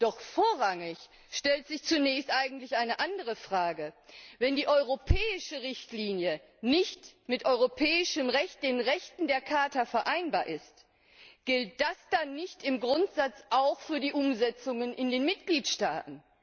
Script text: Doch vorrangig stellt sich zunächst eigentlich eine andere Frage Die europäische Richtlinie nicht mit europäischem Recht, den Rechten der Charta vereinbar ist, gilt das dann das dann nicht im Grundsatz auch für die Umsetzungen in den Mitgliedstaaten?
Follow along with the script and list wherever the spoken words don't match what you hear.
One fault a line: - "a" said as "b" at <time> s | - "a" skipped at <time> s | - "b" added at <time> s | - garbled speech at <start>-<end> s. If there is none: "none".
- "Wenn" added at 4.4 s
- "das dann" skipped at 12.4 s